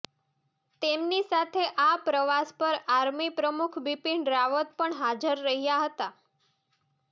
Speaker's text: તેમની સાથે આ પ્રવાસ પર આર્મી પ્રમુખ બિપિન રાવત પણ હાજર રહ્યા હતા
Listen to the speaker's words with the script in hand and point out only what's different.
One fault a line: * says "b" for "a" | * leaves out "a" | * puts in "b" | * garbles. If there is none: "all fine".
all fine